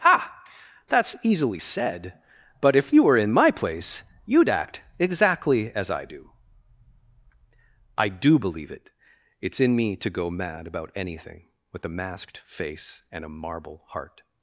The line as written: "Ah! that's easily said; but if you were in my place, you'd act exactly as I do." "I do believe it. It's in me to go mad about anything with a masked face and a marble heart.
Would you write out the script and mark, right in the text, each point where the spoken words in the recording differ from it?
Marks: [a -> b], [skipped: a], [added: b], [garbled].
"Ah! that's easily said; but if you were in my place, you'd act exactly as I do." "I do believe it. It's in me to go mad about anything with a masked face and a marble heart.